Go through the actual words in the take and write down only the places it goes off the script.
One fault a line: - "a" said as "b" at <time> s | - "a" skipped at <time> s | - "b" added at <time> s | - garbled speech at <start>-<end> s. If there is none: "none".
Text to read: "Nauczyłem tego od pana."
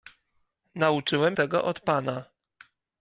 none